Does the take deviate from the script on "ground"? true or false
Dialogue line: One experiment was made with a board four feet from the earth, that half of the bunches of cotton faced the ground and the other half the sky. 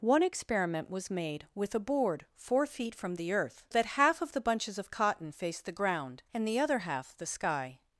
false